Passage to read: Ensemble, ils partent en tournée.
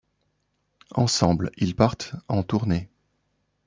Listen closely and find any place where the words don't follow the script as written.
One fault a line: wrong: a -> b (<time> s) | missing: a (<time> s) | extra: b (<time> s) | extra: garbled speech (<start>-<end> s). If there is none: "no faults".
no faults